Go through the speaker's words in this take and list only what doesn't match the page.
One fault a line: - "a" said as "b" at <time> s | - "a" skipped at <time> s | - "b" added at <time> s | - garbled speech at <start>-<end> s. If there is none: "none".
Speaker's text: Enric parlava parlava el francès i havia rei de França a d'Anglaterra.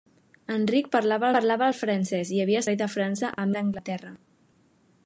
none